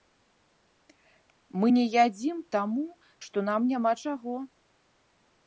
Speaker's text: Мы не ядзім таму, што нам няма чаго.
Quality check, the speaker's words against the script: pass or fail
pass